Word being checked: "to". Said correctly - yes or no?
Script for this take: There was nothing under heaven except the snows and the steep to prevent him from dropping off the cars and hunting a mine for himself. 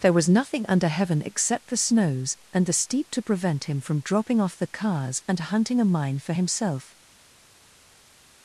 yes